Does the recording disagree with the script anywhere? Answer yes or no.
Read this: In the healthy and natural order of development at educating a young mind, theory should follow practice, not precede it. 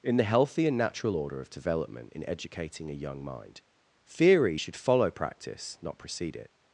yes